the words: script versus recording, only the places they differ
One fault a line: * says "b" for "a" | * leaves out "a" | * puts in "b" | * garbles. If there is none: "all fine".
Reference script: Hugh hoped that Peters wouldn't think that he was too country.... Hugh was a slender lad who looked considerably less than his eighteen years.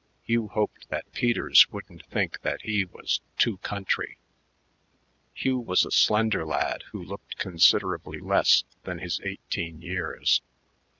all fine